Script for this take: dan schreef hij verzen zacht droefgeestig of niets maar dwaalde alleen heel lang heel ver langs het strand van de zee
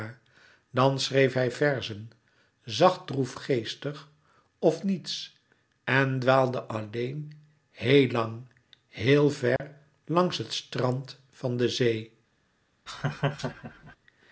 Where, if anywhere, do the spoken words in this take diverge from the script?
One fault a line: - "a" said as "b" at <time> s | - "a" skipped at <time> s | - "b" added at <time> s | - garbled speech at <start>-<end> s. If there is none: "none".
- "maar" said as "en" at 5.8 s